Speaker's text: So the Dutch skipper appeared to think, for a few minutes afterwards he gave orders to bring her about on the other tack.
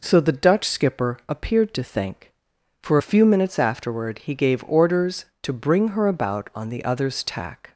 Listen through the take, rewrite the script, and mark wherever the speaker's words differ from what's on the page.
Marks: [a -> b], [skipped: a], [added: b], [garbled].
So the Dutch skipper appeared to think, for a few minutes [afterwards -> afterward] he gave orders to bring her about on the [other -> others] tack.